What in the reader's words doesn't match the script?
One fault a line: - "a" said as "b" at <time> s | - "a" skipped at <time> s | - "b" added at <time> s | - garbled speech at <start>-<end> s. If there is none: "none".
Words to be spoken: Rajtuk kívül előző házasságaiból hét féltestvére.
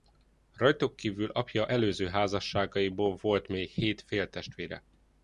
- "apja" added at 1.3 s
- "volt még" added at 3.2 s